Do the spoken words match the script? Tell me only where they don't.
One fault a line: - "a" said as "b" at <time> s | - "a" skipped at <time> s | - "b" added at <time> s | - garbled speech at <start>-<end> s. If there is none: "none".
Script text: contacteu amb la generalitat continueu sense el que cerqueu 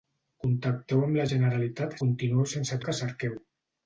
none